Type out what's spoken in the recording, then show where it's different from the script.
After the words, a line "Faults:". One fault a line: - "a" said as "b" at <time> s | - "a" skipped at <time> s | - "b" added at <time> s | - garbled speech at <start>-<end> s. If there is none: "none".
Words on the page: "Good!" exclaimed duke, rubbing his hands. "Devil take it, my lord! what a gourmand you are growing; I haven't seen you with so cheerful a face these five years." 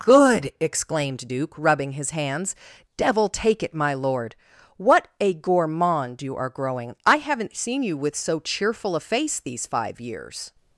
"Good!" exclaimed duke, rubbing his hands. "Devil take it, my lord! what a gourmand you are growing; I haven't seen you with so cheerful a face these five years."
Faults:
none